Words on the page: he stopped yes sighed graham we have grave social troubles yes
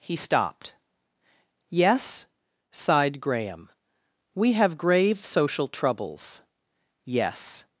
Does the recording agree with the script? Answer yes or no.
yes